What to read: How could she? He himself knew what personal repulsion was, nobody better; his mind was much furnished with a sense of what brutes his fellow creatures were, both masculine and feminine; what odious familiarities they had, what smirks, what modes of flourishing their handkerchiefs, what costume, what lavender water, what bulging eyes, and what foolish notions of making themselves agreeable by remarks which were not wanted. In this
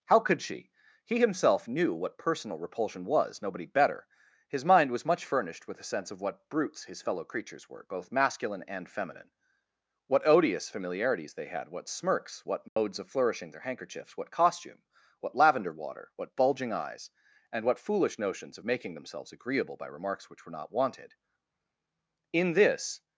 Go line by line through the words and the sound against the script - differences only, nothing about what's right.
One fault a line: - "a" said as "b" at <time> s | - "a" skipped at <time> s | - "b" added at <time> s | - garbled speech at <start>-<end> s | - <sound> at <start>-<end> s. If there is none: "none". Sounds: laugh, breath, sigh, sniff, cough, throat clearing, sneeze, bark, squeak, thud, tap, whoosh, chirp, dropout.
- dropout at 12.7-12.8 s